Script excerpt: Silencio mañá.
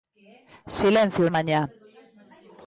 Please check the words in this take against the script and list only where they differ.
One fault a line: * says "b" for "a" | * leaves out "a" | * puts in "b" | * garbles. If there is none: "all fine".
all fine